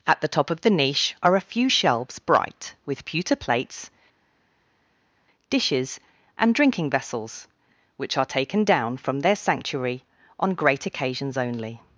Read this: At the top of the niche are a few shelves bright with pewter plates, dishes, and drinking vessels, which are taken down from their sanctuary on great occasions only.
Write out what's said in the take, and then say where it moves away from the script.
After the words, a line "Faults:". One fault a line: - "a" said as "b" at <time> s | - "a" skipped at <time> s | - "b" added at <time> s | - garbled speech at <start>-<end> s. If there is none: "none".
At the top of the niche are a few shelves bright with pewter plates, dishes, and drinking vessels, which are taken down from their sanctuary on great occasions only.
Faults:
none